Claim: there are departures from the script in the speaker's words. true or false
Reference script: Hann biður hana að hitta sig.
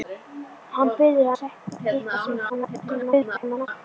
true